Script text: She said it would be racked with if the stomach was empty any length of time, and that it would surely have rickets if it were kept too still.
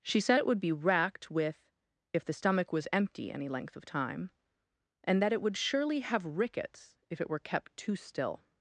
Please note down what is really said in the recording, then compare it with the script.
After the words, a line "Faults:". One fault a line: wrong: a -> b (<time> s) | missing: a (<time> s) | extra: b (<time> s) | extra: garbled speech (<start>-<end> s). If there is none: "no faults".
She said it would be racked with if the stomach was empty any length of time, and that it would surely have rickets if it were kept too still.
Faults:
no faults